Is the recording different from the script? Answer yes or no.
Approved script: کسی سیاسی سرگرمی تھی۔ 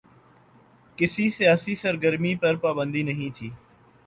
yes